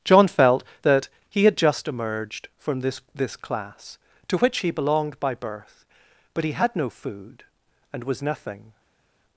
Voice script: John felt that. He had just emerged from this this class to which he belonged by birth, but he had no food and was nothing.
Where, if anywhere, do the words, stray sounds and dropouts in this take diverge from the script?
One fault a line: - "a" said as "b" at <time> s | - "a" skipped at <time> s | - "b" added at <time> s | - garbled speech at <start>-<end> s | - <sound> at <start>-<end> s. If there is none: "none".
none